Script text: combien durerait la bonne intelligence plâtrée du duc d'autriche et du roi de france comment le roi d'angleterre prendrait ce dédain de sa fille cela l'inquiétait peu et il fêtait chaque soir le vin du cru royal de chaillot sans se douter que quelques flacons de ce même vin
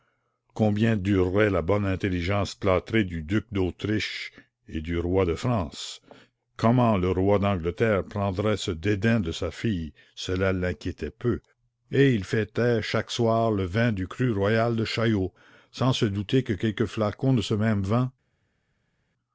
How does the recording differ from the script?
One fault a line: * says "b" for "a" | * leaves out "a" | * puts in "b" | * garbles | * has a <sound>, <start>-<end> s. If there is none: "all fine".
all fine